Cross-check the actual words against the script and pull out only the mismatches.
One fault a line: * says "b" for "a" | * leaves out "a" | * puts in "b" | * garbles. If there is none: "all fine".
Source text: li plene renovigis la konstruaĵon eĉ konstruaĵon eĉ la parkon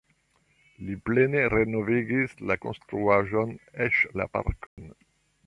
* leaves out "konstruaĵon eĉ"